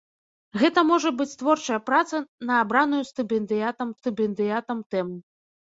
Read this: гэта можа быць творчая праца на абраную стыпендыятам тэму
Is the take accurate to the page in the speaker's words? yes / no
no